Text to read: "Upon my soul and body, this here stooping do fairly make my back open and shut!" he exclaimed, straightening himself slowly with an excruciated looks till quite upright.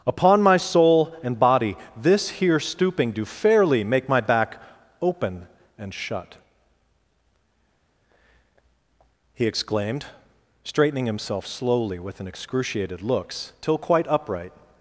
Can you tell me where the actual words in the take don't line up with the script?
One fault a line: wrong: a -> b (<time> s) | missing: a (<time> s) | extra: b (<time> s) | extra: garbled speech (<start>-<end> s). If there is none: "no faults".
no faults